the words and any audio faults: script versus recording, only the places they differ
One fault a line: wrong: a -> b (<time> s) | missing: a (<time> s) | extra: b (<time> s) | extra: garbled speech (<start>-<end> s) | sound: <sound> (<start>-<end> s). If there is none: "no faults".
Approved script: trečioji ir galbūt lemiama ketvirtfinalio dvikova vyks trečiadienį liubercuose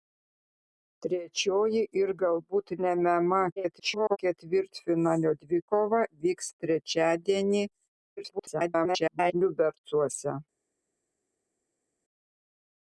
extra: garbled speech (3.6-4.2 s)
extra: garbled speech (8.2-9.3 s)